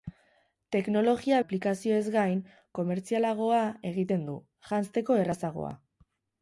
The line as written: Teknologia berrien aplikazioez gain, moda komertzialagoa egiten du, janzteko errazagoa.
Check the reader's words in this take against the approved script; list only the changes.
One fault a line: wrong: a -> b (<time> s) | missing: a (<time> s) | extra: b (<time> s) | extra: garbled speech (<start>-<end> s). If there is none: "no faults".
missing: berrien (1.4 s)
missing: moda (2.4 s)